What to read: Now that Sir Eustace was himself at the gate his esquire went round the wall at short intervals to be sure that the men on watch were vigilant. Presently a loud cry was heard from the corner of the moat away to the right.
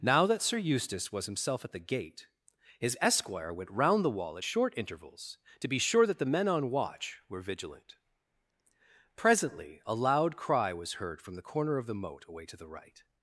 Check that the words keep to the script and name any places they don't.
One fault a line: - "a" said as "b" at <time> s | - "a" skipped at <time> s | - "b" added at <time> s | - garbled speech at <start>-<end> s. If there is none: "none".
none